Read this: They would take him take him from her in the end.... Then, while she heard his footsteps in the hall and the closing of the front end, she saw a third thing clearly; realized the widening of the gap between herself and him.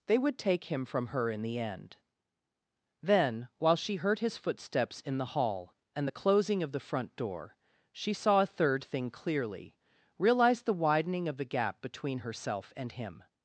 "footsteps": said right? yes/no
yes